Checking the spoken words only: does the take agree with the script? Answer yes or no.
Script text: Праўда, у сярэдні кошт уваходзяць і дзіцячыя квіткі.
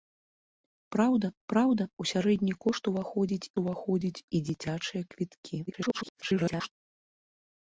no